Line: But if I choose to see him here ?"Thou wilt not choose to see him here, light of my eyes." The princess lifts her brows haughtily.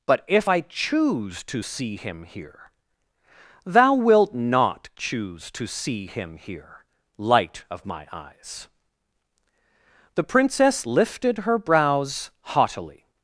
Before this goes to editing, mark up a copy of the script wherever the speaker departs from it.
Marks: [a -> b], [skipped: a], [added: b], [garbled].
But if I choose to see him here ?"Thou wilt not choose to see him here, light of my eyes." The princess [lifts -> lifted] her brows haughtily.